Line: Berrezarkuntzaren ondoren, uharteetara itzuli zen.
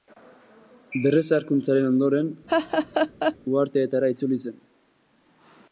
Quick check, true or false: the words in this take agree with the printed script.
true